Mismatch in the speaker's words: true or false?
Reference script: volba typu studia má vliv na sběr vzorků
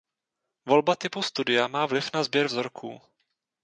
false